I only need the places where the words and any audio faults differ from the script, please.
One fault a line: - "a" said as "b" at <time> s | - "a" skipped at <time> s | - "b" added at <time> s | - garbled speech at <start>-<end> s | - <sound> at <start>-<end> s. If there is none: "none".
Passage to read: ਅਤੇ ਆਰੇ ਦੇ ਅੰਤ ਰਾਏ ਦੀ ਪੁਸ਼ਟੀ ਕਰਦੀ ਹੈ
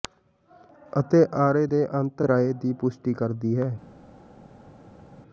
none